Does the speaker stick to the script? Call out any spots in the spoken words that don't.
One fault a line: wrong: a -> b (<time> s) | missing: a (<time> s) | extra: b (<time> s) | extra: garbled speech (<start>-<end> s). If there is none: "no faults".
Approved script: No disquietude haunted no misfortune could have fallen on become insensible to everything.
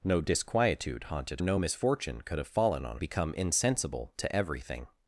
no faults